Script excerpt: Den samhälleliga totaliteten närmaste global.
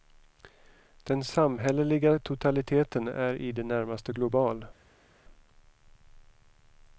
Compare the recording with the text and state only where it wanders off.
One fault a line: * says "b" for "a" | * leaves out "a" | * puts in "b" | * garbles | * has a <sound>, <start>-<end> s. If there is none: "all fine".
* puts in "är i det"